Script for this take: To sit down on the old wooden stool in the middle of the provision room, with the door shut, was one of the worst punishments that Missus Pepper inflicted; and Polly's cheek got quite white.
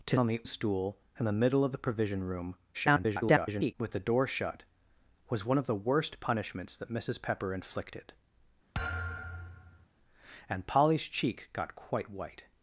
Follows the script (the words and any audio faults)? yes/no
no